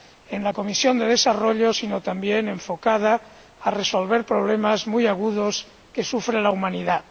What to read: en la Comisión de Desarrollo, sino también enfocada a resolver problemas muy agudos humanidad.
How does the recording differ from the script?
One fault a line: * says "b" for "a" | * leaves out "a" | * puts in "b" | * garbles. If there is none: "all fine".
* puts in "que sufre la"